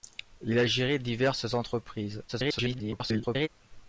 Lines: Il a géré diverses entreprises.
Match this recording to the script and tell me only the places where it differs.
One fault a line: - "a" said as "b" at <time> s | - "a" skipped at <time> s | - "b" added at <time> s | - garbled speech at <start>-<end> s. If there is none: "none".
- garbled speech at 2.3-3.5 s